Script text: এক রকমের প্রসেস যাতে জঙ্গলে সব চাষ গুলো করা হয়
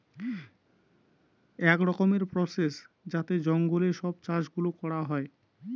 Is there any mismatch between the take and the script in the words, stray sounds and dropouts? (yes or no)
no